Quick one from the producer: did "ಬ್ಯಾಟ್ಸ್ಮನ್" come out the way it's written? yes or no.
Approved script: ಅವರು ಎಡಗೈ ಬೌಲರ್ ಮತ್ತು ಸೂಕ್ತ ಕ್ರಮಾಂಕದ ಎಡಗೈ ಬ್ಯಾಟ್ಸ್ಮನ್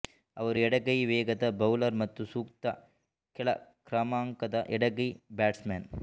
yes